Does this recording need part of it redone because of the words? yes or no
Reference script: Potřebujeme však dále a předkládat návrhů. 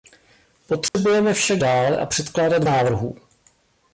no